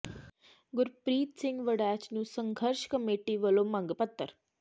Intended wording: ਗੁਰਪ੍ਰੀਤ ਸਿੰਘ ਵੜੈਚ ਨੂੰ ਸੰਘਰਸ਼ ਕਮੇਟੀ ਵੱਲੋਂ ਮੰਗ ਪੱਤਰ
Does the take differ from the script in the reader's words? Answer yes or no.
no